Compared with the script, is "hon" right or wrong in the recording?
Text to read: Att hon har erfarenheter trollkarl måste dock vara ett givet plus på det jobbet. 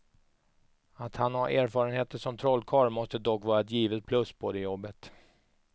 wrong